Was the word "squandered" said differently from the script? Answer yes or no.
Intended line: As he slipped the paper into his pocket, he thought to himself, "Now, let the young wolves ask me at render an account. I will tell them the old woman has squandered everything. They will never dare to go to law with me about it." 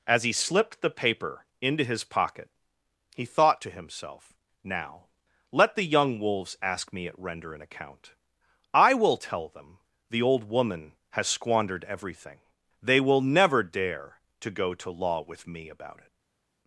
no